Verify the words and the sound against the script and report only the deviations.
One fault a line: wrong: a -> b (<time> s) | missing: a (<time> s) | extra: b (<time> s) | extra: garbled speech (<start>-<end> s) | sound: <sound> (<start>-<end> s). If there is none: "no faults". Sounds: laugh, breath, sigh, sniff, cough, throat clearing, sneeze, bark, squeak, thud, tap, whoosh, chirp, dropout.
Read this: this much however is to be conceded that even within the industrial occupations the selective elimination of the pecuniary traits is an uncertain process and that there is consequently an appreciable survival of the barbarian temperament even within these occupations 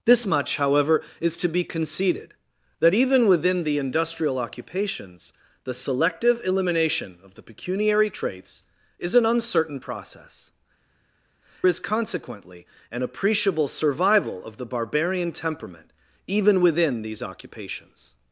missing: and that there (10.5 s)